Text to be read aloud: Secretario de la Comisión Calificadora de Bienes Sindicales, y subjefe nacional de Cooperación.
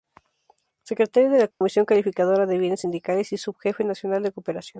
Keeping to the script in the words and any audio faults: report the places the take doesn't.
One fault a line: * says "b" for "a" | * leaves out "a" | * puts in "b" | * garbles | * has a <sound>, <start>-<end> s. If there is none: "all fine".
* has a dropout, 1.5-1.6 s